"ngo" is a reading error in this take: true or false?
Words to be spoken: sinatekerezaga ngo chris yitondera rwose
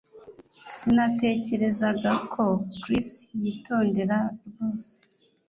true